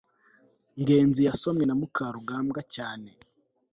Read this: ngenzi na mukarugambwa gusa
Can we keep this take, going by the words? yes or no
no